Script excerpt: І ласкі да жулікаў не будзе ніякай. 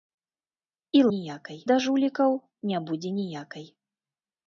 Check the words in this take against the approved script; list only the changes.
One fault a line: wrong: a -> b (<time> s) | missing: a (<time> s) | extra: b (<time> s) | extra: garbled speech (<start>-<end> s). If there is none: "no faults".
wrong: ласкі -> ніякай (1.1 s)